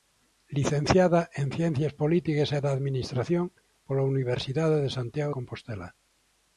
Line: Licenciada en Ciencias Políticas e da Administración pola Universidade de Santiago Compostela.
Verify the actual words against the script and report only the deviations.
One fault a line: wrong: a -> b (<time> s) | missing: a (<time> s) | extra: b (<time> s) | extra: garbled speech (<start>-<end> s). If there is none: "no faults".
no faults